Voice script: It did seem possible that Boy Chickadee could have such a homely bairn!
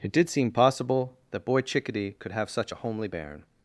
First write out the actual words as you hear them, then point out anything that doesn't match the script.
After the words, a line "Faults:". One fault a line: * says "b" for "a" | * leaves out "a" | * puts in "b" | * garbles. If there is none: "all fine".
It did seem possible that Boy Chickadee could have such a homely bairn!
Faults:
all fine